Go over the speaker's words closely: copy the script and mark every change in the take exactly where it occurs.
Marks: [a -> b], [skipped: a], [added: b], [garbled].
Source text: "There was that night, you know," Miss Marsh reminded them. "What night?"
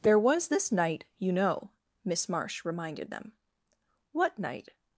"There was [that -> this] night, you know," Miss Marsh reminded them. "What night?"